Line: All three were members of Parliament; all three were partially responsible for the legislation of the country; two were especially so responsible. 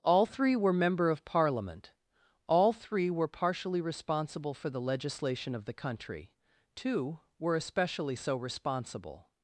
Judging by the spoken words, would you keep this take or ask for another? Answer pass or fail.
fail